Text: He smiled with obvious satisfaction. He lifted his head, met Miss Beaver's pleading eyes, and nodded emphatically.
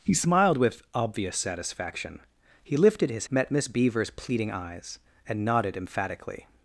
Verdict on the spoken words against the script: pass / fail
fail